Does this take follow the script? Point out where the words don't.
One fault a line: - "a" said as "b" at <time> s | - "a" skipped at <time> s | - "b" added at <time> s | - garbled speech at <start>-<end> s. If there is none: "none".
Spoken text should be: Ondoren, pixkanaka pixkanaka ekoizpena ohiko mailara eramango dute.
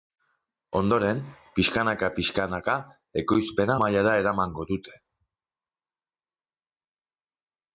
- "ohiko" skipped at 3.8 s